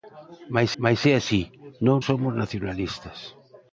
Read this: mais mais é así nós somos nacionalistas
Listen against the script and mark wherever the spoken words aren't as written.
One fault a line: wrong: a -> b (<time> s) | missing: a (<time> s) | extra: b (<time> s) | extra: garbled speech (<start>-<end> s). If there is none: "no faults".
no faults